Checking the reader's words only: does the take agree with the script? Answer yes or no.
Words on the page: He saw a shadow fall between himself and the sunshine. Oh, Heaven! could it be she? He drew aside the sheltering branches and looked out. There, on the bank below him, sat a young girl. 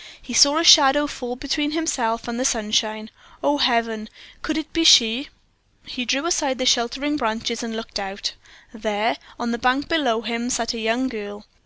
yes